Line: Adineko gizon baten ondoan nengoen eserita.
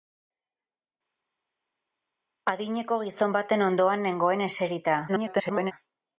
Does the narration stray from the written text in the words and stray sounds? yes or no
yes